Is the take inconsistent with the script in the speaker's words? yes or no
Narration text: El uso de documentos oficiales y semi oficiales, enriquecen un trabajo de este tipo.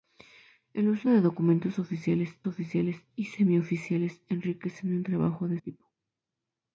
yes